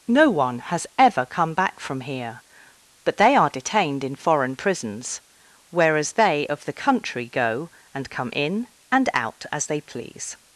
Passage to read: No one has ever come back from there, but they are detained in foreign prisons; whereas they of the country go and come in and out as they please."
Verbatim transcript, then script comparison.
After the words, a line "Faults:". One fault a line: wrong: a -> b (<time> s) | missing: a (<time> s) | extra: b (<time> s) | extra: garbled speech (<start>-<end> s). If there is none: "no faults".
No one has ever come back from here, but they are detained in foreign prisons; whereas they of the country go and come in and out as they please."
Faults:
wrong: there -> here (2.0 s)